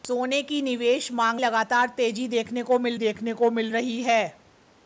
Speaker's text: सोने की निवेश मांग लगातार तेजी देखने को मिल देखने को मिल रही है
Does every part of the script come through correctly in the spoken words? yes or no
yes